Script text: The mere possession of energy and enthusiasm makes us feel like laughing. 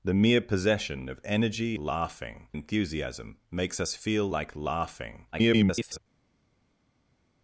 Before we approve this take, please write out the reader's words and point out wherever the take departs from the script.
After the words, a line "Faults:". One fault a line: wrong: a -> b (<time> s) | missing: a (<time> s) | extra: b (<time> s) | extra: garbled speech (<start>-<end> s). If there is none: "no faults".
The mere possession of energy laughing enthusiasm makes us feel like laughing. [garbled]
Faults:
wrong: and -> laughing (1.8 s)
extra: garbled speech (5.3-6.0 s)